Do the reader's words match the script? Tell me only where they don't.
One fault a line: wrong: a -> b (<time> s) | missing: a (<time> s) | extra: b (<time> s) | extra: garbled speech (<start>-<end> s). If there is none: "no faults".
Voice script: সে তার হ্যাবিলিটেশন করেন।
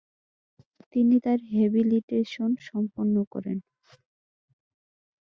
wrong: সে -> তিনি (0.9 s)
extra: সম্পন্ন (2.7 s)